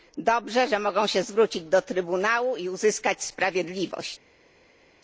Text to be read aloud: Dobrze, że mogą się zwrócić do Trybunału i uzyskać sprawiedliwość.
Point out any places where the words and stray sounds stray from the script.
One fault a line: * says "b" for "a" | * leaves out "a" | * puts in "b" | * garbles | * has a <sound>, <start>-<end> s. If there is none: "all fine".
all fine